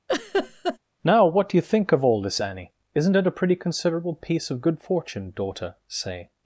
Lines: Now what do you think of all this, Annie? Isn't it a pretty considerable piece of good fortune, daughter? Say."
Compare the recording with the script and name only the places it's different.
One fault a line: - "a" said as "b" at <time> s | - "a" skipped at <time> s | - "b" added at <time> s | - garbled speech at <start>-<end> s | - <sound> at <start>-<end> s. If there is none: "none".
- laugh at 0.1-0.8 s